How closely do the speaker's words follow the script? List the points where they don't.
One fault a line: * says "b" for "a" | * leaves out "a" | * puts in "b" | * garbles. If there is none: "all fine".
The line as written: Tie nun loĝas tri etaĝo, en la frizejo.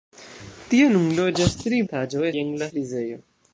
all fine